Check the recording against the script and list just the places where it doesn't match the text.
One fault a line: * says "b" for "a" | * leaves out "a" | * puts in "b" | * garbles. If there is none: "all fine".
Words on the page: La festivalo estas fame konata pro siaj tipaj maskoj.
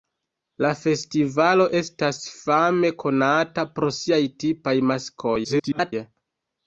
* garbles